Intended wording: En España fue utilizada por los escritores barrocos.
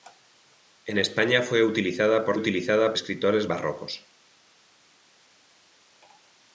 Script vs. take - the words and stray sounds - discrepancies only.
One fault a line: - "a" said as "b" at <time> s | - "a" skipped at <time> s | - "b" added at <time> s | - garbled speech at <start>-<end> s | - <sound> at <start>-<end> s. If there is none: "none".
- "los" said as "utilizada" at 2.3 s